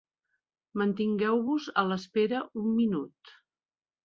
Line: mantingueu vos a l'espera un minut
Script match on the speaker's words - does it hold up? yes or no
yes